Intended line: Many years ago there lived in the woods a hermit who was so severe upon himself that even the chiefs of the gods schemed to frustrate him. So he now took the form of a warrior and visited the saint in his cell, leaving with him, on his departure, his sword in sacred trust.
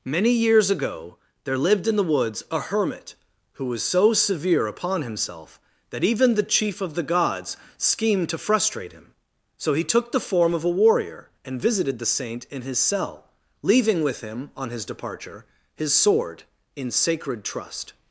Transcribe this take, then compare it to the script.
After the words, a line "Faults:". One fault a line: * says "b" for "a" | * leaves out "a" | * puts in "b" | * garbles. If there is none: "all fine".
Many years ago there lived in the woods a hermit who was so severe upon himself that even the chief of the gods schemed to frustrate him. So he took the form of a warrior and visited the saint in his cell, leaving with him, on his departure, his sword in sacred trust.
Faults:
* says "chief" for "chiefs"
* leaves out "now"